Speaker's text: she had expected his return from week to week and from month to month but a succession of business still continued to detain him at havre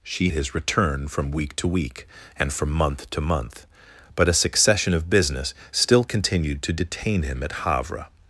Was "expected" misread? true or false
true